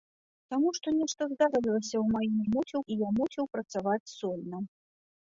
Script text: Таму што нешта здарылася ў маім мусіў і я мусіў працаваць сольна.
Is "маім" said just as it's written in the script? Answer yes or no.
yes